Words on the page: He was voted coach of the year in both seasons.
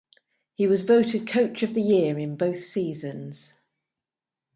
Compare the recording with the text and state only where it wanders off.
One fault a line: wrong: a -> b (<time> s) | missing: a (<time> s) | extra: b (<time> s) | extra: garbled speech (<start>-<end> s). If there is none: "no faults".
no faults